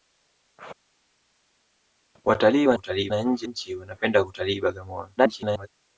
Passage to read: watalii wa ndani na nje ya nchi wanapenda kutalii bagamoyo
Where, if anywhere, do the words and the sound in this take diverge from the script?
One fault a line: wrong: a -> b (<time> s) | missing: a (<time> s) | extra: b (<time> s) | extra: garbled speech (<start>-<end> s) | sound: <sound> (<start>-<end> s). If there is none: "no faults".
wrong: ndani -> kutalii (2.7 s)
missing: ya (3.5 s)
extra: garbled speech (5.2-5.7 s)